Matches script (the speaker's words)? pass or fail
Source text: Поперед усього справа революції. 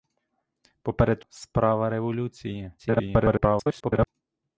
fail